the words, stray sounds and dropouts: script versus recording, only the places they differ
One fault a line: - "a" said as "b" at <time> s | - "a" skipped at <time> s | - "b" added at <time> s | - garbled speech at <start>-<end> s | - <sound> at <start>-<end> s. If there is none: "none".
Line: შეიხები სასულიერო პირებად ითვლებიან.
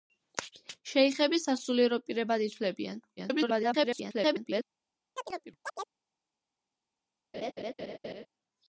- garbled speech at 3.2-4.6 s
- chirp at 5.2-6.0 s
- laugh at 7.3-8.3 s